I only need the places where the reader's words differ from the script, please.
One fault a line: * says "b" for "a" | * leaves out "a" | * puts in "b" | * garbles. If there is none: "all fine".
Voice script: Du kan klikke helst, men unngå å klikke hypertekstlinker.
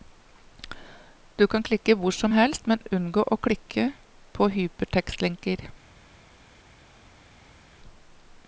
* puts in "hvor som"
* puts in "på"